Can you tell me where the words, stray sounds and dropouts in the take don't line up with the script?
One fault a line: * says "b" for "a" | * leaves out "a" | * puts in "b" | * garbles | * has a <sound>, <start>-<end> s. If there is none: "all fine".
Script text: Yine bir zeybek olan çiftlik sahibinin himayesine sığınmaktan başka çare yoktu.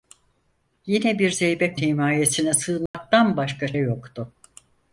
* leaves out "olan çiftlik sahibinin"
* has a dropout, 2.9-2.9 s
* leaves out "çare"